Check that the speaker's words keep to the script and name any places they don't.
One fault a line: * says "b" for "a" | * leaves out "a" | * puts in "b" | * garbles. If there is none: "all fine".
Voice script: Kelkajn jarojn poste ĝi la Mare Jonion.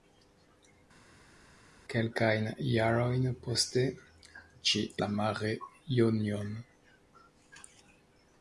all fine